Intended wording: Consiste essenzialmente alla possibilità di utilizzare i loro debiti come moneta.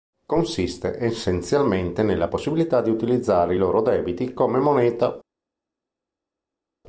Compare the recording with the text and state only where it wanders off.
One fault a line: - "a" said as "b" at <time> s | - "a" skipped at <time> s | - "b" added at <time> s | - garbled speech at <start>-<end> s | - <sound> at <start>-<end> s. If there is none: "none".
- "alla" said as "nella" at 2.0 s